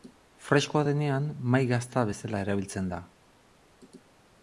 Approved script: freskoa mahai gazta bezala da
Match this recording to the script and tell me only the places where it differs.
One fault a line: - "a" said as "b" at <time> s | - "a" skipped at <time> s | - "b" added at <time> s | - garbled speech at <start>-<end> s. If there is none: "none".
- "denean" added at 0.9 s
- "erabiltzen" added at 2.5 s